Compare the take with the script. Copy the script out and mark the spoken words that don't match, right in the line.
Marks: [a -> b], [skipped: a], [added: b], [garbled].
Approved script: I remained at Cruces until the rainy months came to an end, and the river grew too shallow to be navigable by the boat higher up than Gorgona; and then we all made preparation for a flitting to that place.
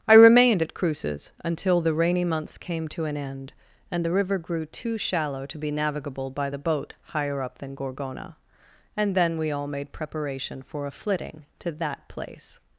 I remained at Cruces until the rainy months came to an end, and the river grew too shallow to be navigable by the boat higher up than Gorgona; and then we all made preparation for a flitting to that place.